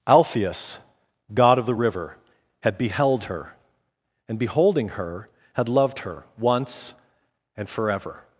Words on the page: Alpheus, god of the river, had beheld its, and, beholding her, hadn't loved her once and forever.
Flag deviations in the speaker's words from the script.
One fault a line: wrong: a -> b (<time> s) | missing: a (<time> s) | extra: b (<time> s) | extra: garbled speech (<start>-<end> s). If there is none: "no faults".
wrong: its -> her (3.2 s)
wrong: hadn't -> had (5.5 s)